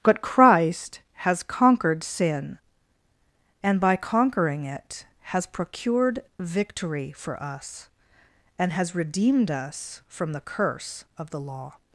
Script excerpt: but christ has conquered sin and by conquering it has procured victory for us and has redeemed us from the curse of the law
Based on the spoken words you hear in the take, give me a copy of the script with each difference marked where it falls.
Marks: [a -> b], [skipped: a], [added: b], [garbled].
but christ has conquered sin and by conquering it has procured victory for us and has redeemed us from the curse of the law